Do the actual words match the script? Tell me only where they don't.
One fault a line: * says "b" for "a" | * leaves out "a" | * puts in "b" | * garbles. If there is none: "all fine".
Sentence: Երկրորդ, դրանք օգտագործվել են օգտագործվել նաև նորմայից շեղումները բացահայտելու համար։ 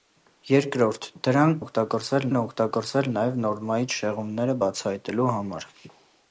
all fine